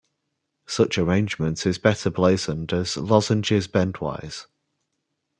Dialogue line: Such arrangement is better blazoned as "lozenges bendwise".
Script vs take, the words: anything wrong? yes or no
no